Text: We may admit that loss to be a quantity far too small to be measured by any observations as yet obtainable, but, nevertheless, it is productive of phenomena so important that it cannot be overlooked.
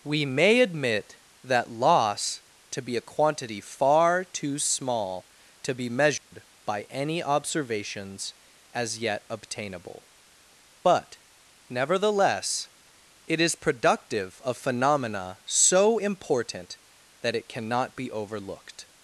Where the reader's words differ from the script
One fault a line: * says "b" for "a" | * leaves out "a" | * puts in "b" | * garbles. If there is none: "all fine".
all fine